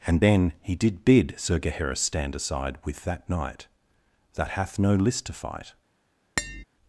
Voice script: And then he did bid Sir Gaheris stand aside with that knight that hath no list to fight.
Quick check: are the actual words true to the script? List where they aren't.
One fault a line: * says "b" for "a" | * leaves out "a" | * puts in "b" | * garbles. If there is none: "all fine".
all fine